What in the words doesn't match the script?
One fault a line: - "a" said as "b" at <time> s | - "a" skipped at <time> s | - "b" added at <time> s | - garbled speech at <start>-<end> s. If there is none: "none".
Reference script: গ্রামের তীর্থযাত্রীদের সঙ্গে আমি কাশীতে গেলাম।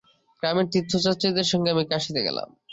none